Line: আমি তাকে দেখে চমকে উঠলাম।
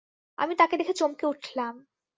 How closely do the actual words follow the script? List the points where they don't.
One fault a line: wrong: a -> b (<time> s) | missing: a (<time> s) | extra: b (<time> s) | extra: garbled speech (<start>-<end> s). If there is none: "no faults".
no faults